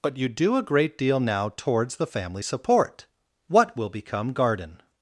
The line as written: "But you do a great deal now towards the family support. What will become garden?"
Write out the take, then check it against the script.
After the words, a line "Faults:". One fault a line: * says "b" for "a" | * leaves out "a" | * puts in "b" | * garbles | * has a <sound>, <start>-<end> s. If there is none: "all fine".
"But you do a great deal now towards the family support. What will become garden?"
Faults:
all fine